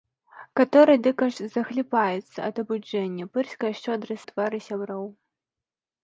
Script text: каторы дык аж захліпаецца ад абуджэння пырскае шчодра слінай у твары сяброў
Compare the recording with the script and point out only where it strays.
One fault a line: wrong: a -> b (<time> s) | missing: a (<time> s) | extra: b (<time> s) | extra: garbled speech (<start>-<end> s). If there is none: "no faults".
missing: слінай (4.2 s)